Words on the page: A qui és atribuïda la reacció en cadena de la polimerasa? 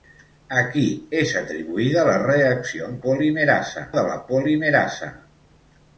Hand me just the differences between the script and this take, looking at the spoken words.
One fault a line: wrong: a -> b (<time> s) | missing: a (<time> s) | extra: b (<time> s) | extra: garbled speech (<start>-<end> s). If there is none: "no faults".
wrong: cadena -> polimerasa (3.1 s)